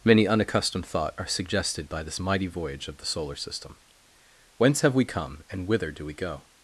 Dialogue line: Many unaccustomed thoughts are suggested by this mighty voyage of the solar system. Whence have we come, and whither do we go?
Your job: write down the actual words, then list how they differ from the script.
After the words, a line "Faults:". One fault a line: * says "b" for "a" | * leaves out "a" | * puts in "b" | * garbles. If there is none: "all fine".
Many unaccustomed thought are suggested by this mighty voyage of the solar system. Whence have we come, and whither do we go?
Faults:
* says "thought" for "thoughts"